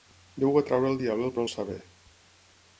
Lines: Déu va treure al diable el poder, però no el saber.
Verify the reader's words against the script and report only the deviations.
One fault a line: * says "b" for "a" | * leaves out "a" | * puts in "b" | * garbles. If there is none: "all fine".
* leaves out "poder però"